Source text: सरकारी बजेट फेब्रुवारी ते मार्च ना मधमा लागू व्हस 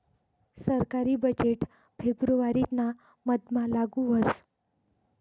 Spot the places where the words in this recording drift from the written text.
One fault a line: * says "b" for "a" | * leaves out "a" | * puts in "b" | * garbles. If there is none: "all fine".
* leaves out "ते मार्च"